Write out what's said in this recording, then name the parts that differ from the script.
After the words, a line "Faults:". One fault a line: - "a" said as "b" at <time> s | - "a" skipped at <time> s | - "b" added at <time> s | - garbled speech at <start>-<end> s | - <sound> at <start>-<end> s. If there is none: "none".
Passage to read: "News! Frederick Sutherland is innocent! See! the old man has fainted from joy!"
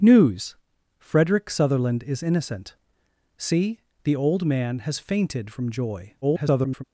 "News! Frederick Sutherland is innocent! See! the old man has fainted from joy!" [garbled]
Faults:
- garbled speech at 6.2-6.8 s